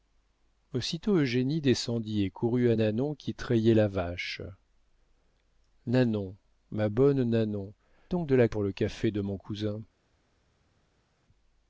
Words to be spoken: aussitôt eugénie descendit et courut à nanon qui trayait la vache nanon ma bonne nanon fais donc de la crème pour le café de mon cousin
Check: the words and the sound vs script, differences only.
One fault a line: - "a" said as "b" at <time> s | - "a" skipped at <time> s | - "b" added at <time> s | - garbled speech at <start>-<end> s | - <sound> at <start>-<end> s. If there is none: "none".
- "fais" skipped at 7.7 s
- "crème" skipped at 8.5 s